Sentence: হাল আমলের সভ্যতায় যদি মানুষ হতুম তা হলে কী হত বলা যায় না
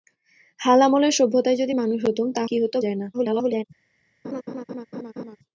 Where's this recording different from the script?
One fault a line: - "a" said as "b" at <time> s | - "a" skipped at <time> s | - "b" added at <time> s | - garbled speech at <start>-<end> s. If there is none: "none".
- "হলে" skipped at 2.4 s
- "বলা" skipped at 2.7 s
- garbled speech at 3.1-3.6 s